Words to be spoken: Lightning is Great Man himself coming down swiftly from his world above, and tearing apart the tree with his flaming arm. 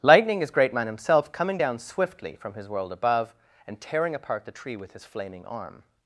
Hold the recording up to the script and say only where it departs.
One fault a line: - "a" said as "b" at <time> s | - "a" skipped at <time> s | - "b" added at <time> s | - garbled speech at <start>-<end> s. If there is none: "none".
none